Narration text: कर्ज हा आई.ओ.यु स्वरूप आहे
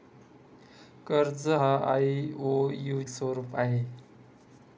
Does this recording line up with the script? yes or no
yes